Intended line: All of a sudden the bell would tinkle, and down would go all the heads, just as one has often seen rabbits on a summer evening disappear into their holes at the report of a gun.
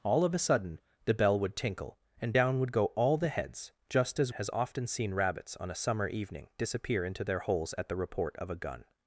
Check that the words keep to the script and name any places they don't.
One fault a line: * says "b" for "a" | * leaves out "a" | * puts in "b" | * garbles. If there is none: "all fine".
* leaves out "one"